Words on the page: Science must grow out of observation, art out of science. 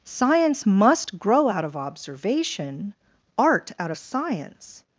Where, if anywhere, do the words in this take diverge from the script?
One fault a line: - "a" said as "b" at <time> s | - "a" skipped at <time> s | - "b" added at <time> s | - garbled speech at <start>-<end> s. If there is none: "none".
none